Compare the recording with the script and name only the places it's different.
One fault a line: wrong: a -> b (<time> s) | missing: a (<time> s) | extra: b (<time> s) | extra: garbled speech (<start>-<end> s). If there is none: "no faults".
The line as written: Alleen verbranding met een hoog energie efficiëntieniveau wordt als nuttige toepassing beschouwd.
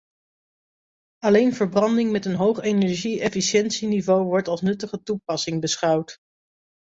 no faults